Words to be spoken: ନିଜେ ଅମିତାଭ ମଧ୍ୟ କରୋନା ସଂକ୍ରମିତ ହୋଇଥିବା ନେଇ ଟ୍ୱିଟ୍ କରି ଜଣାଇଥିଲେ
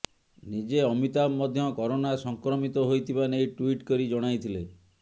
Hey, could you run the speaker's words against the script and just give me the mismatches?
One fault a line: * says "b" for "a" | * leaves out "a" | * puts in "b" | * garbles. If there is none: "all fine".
all fine